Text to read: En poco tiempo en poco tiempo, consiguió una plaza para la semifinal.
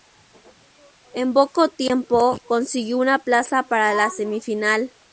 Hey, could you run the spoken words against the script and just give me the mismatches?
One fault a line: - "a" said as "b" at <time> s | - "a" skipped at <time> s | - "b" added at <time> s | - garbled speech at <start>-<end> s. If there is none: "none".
- "en poco tiempo" skipped at 2.4 s